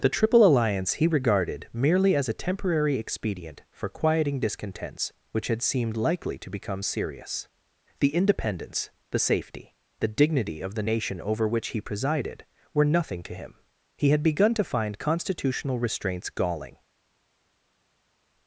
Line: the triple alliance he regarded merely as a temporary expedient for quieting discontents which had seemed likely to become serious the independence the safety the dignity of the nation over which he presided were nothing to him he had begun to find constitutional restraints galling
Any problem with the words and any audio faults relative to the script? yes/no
no